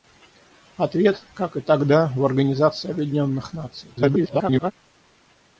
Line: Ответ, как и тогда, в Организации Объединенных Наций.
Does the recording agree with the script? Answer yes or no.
no